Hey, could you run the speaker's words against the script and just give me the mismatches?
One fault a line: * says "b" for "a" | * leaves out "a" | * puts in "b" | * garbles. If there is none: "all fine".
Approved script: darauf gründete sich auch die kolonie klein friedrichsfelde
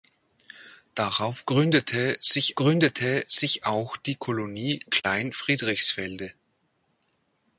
* puts in "gründete sich"